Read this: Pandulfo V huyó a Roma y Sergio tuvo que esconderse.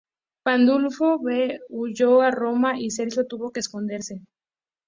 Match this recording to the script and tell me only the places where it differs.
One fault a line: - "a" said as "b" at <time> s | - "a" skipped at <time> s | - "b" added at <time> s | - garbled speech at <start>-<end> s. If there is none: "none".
none